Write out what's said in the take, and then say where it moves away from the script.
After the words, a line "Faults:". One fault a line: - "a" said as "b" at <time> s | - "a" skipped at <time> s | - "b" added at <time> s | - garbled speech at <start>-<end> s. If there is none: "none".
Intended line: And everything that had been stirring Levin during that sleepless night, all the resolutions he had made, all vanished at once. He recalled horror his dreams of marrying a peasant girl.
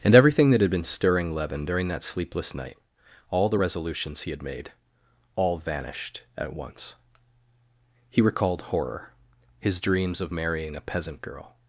And everything that had been stirring Levin during that sleepless night, all the resolutions he had made, all vanished at once. He recalled horror his dreams of marrying a peasant girl.
Faults:
none